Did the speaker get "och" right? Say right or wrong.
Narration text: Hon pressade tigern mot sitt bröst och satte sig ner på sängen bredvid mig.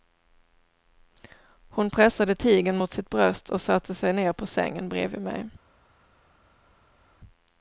right